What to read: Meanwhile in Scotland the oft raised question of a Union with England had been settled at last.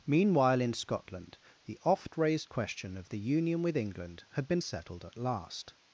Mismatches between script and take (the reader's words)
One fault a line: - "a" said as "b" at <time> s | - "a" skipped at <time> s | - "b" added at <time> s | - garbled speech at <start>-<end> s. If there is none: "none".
- "a" said as "the" at 3.1 s